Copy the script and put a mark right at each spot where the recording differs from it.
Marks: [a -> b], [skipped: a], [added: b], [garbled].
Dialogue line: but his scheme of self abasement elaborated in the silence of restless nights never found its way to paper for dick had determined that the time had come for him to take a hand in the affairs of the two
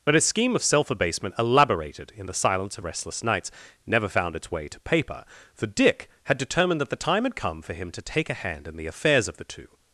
but his scheme of self abasement elaborated in the silence of restless nights never found its way to paper for dick had determined that the time had come for him to take a hand in the affairs of the two